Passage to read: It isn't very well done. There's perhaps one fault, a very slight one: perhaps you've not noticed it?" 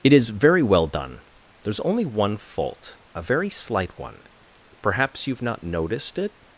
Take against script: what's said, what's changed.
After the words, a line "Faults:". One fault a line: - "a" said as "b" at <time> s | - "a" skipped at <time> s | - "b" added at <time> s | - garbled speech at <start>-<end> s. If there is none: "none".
It is very well done. There's only one fault, a very slight one: perhaps you've not noticed it?"
Faults:
- "isn't" said as "is" at 0.1 s
- "perhaps" said as "only" at 1.8 s